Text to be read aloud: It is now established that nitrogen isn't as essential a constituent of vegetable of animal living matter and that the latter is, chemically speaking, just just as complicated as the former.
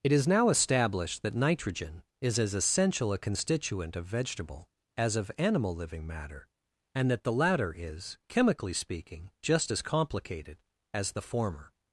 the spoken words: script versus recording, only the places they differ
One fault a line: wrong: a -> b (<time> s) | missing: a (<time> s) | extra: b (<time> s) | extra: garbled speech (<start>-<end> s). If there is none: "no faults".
wrong: isn't -> is (2.2 s)
extra: as (5.0 s)
missing: just (9.7 s)